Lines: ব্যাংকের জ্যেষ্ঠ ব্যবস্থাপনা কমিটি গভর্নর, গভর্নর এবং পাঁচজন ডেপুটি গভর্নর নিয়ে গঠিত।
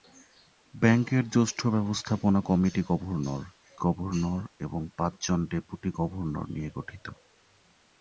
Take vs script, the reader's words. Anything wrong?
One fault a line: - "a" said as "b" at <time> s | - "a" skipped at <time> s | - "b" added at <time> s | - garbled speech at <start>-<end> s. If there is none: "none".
none